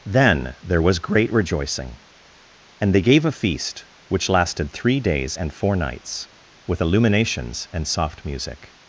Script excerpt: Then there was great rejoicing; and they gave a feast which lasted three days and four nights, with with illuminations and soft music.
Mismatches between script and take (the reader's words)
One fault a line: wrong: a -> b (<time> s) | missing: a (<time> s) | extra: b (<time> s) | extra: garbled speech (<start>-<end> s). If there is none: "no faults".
missing: with (6.8 s)